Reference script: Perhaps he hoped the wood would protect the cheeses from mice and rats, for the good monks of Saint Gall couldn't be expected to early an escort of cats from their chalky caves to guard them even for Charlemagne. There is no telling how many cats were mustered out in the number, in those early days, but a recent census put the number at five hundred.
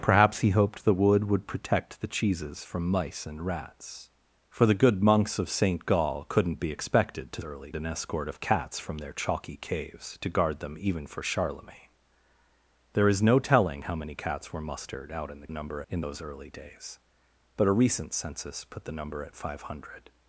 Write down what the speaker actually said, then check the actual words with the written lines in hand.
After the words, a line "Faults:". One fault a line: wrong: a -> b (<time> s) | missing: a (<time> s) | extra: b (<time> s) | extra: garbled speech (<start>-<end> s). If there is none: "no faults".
Perhaps he hoped the wood would protect the cheeses from mice and rats, for the good monks of Saint Gall couldn't be expected to early an escort of cats from their chalky caves to guard them even for Charlemagne. There is no telling how many cats were mustered out in the number, in those early days, but a recent census put the number at five hundred.
Faults:
no faults